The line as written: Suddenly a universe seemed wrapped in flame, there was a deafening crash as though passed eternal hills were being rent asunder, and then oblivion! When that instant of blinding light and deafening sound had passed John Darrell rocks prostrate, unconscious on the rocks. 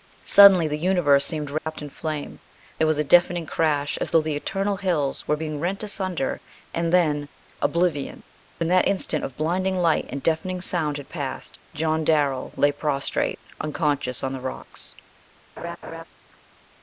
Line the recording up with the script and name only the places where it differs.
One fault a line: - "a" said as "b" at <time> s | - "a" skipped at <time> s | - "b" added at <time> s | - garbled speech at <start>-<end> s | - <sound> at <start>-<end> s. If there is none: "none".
- "a" said as "the" at 0.7 s
- dropout at 1.6-1.7 s
- "passed" said as "the" at 4.2 s
- "rocks" said as "lay" at 12.5 s
- laugh at 15.6-16.0 s